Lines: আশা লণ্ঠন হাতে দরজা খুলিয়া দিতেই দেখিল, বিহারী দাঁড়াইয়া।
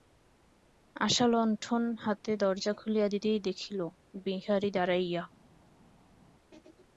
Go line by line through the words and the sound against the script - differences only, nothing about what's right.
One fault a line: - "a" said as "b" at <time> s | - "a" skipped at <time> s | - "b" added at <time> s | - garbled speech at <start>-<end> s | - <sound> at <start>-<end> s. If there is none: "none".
none